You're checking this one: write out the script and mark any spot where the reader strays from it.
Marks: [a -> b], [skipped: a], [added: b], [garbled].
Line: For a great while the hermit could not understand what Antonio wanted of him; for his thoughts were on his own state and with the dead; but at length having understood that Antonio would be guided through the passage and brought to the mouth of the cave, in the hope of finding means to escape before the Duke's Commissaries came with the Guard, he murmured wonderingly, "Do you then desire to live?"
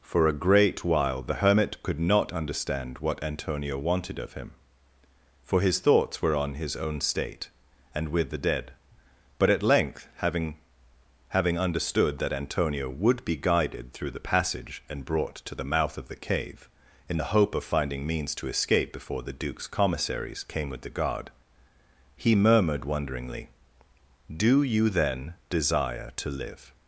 For a great while the hermit could not understand what Antonio wanted of him; for his thoughts were on his own state and with the dead; but at length having [added: having] understood that Antonio would be guided through the passage and brought to the mouth of the cave, in the hope of finding means to escape before the Duke's Commissaries came with the Guard, he murmured wonderingly, "Do you then desire to live?"